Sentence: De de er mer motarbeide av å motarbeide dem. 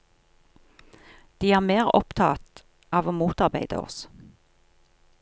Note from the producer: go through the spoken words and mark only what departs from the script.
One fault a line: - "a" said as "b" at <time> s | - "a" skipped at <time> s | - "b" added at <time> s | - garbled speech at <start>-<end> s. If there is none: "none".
- "de" skipped at 1.5 s
- "motarbeide" said as "opptatt" at 2.0 s
- "dem" said as "oss" at 3.8 s